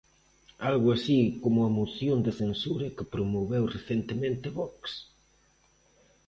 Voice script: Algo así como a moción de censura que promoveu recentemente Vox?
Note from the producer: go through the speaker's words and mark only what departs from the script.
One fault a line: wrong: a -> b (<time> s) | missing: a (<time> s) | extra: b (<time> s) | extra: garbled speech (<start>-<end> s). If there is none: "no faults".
no faults